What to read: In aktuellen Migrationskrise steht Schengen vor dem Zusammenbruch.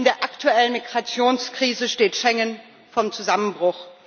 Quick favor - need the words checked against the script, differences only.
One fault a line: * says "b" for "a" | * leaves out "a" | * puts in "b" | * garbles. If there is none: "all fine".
* puts in "der"